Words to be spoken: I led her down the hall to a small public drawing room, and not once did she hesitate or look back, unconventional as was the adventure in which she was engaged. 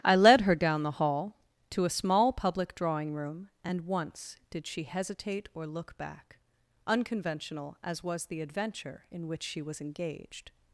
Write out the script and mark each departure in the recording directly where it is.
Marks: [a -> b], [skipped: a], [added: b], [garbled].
I led her down the hall to a small public drawing room, and [skipped: not] once did she hesitate or look back, unconventional as was the adventure in which she was engaged.